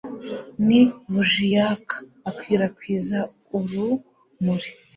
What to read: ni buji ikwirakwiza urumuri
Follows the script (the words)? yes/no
no